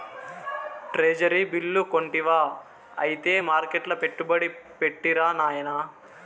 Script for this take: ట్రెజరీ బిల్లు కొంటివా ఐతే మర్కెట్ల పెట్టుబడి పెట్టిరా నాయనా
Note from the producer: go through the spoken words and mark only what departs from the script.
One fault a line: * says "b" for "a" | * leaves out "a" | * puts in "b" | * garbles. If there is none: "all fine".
all fine